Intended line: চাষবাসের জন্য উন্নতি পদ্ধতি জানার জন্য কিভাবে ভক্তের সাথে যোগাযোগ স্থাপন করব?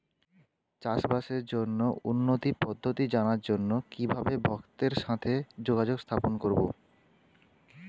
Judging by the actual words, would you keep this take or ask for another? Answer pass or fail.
pass